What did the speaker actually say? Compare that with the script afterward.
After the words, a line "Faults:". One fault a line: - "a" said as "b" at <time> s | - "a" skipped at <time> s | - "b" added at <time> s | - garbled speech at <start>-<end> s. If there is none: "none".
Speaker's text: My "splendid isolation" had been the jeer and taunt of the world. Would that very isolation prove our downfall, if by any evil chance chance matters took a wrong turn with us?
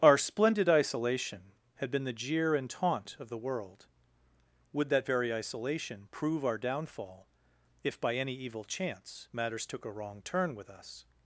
Our "splendid isolation" had been the jeer and taunt of the world. Would that very isolation prove our downfall, if by any evil chance matters took a wrong turn with us?
Faults:
- "My" said as "Our" at 0.0 s
- "chance" skipped at 9.3 s